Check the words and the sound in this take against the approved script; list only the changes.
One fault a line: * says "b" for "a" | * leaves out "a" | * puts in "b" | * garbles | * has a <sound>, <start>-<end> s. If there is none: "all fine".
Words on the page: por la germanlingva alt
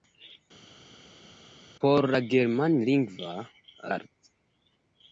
all fine